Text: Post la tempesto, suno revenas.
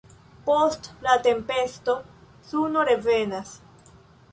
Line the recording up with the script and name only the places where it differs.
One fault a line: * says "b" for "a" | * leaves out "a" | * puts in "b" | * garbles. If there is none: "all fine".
all fine